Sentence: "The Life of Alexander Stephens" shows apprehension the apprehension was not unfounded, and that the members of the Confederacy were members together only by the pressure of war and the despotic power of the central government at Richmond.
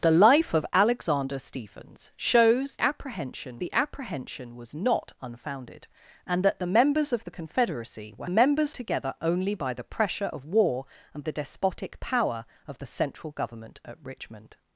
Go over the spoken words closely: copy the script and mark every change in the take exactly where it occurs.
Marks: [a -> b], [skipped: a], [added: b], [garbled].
"The Life of Alexander Stephens" shows apprehension the apprehension was not unfounded, and that the members of the Confederacy were members together only by the pressure of war and the despotic power of the central government at Richmond.